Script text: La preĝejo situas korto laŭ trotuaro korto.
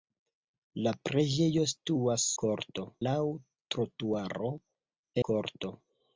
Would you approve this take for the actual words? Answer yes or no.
yes